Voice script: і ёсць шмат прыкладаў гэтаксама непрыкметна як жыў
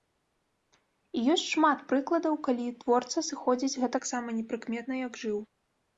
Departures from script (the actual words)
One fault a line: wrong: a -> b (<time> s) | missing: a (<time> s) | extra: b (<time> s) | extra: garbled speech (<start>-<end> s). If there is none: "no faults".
extra: калі творца сыходзіць (2.5 s)